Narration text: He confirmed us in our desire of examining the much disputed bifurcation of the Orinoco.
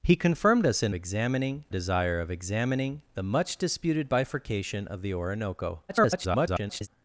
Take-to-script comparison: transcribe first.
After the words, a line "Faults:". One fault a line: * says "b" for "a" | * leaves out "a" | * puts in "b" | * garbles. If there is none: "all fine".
He confirmed us in examining desire of examining the much disputed bifurcation of the Orinoco. [garbled]
Faults:
* says "examining" for "our"
* garbles